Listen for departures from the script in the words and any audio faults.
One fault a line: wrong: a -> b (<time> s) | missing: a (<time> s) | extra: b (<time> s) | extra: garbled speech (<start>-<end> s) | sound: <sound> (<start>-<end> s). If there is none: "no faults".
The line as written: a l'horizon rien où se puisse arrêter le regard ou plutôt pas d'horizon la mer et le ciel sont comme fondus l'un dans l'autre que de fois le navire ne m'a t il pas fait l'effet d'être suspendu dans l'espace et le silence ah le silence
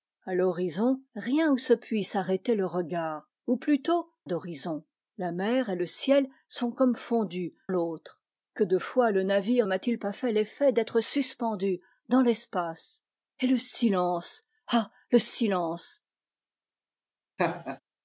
missing: pas (4.1 s)
missing: l'un dans (7.5 s)
missing: ne (9.7 s)
sound: laugh (17.4-17.8 s)